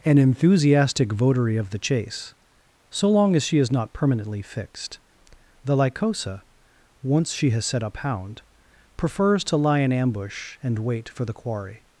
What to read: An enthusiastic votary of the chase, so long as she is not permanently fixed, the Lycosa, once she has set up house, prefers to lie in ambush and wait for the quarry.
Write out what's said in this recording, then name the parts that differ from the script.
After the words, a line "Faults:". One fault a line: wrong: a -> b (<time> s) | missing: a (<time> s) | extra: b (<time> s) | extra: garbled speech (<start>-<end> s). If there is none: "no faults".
An enthusiastic votary of the chase, so long as she is not permanently fixed, the Lycosa, once she has set up hound, prefers to lie in ambush and wait for the quarry.
Faults:
wrong: house -> hound (8.0 s)